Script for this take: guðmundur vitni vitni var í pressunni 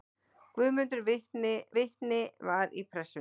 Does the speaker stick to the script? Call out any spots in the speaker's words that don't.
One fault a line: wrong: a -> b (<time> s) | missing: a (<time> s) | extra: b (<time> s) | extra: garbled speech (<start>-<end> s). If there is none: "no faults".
no faults